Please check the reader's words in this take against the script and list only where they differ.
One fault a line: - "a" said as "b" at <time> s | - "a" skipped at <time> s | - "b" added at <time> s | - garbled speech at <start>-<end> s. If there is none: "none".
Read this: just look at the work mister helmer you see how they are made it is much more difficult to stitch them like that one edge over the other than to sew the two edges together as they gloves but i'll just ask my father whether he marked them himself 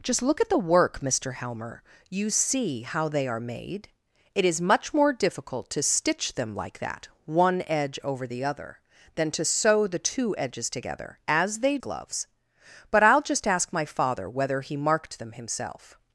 none